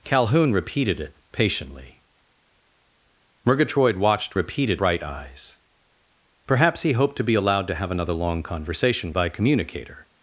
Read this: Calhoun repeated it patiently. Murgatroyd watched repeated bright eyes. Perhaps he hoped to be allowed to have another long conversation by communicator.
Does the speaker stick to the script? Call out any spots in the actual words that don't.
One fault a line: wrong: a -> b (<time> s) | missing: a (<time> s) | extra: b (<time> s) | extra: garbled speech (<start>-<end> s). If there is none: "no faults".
no faults